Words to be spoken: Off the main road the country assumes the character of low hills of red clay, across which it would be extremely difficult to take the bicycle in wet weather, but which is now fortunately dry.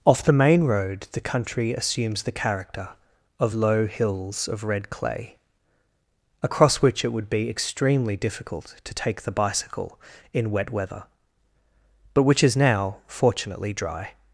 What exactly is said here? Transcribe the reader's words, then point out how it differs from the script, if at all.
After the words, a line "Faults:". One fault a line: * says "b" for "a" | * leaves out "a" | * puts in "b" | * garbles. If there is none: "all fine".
Off the main road the country assumes the character of low hills of red clay, across which it would be extremely difficult to take the bicycle in wet weather, but which is now fortunately dry.
Faults:
all fine